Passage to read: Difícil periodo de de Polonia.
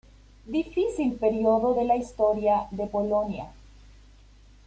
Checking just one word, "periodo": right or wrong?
right